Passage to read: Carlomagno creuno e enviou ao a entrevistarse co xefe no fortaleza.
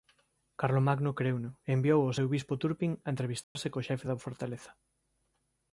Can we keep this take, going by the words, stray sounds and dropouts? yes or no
no